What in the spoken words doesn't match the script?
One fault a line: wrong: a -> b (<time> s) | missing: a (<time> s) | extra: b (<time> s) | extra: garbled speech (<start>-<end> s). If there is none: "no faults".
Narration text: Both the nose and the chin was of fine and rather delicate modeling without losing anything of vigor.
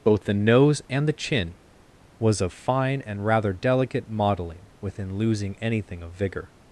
wrong: without -> within (4.8 s)